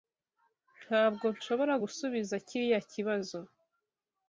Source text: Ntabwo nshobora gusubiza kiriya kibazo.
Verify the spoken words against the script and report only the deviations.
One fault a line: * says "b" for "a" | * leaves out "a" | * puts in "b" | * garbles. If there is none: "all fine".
all fine